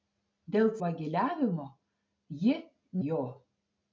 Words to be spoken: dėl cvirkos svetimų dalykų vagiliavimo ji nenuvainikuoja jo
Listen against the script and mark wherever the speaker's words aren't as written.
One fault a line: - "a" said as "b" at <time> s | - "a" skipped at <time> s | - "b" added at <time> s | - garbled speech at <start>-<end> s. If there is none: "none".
- "cvirkos svetimų dalykų" skipped at 0.7 s
- "nenuvainikuoja" skipped at 2.6 s